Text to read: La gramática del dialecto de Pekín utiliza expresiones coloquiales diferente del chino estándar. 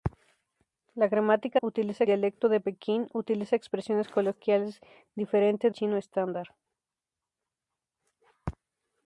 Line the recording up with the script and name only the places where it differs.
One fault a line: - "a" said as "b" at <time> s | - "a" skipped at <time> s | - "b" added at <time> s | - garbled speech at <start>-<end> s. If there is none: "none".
- "del" said as "utiliza" at 1.6 s
- "del" skipped at 5.7 s